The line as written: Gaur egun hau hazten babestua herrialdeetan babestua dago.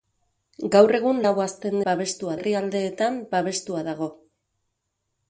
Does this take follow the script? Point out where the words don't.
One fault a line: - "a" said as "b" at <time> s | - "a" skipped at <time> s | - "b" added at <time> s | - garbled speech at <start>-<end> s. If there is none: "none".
none